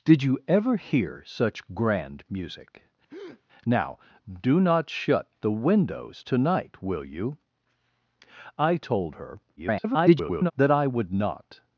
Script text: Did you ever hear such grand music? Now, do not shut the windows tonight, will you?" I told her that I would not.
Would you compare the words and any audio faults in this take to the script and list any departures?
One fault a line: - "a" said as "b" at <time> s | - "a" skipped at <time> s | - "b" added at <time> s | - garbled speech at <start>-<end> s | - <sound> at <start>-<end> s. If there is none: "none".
- breath at 3.1-3.4 s
- garbled speech at 9.6-10.5 s